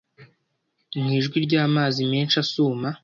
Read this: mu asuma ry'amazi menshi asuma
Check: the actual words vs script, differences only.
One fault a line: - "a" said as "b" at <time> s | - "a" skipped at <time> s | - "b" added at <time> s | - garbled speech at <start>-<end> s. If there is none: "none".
- "asuma" said as "ijwi" at 1.2 s